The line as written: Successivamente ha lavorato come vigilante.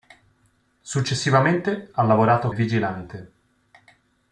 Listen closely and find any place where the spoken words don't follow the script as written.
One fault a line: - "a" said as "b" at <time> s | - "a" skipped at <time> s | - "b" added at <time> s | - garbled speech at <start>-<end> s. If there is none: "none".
- "come" skipped at 2.5 s